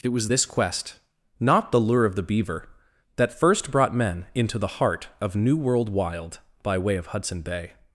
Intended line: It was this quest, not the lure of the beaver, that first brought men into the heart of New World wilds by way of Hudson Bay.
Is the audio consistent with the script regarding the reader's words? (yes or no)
no